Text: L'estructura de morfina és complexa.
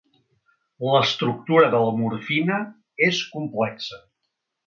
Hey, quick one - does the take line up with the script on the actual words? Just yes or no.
no